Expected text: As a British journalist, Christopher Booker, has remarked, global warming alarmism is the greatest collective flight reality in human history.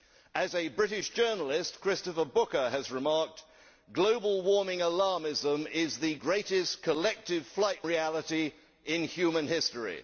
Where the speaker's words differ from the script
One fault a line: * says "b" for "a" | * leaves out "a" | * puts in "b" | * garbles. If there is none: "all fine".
all fine